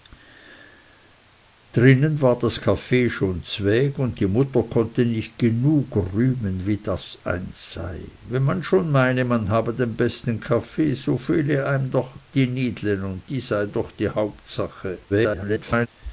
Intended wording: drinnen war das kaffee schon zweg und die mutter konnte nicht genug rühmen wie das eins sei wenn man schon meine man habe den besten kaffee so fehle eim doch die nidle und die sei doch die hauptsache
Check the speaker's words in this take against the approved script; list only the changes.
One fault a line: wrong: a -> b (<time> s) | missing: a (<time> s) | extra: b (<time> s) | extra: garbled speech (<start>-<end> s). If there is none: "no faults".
extra: garbled speech (15.1-15.9 s)